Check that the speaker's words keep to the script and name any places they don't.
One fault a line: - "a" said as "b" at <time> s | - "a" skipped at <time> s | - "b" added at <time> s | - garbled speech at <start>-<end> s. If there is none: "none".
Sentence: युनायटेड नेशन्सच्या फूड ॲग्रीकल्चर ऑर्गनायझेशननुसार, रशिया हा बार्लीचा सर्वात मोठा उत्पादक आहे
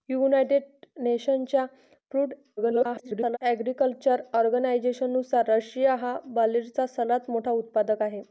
- garbled speech at 2.6-3.4 s